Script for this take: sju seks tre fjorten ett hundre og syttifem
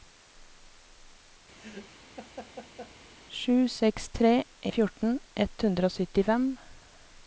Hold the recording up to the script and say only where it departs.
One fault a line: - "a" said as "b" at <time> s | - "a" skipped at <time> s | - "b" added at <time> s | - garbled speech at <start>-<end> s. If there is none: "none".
none